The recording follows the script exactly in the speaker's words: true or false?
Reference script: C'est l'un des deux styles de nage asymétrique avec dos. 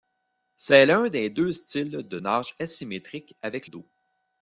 true